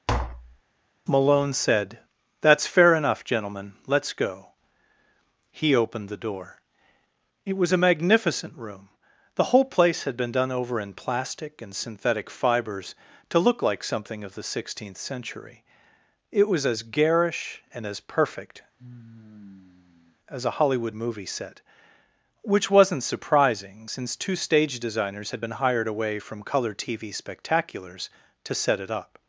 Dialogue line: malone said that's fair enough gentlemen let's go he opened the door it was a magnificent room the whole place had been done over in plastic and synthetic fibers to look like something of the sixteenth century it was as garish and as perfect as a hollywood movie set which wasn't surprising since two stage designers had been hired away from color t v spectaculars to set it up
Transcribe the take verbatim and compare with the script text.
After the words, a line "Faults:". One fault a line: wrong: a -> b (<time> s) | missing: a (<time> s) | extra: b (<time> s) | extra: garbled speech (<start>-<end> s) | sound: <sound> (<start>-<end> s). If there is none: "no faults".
malone said that's fair enough gentlemen let's go he opened the door it was a magnificent room the whole place had been done over in plastic and synthetic fibers to look like something of the sixteenth century it was as garish and as perfect as a hollywood movie set which wasn't surprising since two stage designers had been hired away from color t v spectaculars to set it up
Faults:
sound: tap (0.1-0.6 s)
sound: sigh (18.8-20.2 s)